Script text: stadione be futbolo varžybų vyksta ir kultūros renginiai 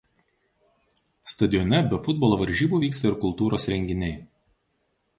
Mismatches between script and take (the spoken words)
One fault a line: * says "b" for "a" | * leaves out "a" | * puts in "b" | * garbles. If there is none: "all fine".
all fine